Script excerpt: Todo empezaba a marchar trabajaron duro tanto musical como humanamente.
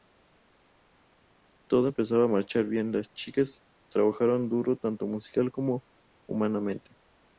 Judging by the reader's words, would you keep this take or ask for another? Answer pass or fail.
fail